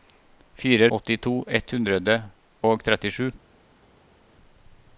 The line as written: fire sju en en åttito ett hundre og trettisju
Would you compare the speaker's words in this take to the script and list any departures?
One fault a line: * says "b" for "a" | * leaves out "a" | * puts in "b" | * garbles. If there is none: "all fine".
* leaves out "sju en en"